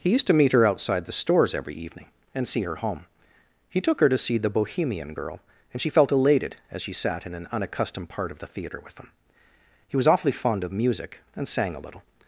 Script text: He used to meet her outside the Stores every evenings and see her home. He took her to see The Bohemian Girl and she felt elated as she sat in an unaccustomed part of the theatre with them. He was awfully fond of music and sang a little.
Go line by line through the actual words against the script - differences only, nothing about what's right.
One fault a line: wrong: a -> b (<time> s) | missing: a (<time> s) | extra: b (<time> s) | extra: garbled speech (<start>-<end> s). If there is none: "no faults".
wrong: evenings -> evening (1.8 s)
wrong: them -> him (9.0 s)